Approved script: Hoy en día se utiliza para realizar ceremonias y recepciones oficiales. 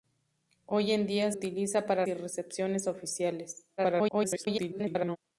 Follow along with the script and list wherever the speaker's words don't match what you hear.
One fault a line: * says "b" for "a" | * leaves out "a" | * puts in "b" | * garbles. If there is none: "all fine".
* leaves out "se"
* leaves out "realizar ceremonias"
* garbles